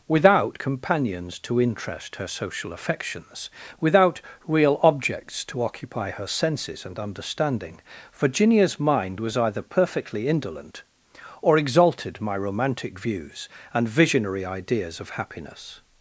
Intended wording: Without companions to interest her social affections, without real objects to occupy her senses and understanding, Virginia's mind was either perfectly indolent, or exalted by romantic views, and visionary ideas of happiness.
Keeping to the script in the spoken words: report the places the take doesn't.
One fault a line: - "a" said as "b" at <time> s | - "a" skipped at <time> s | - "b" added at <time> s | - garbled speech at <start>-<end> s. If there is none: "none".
- "by" said as "my" at 12.2 s